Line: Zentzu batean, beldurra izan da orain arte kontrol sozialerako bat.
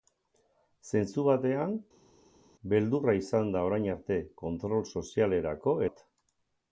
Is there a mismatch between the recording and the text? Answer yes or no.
no